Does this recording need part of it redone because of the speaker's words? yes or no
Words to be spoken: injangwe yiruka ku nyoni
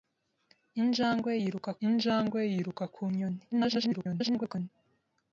yes